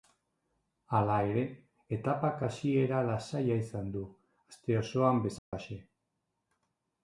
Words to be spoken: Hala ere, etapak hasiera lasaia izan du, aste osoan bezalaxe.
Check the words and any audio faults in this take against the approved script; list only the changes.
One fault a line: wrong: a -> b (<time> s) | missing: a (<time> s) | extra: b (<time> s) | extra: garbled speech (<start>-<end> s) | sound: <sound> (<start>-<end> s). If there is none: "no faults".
sound: dropout (5.4-5.5 s)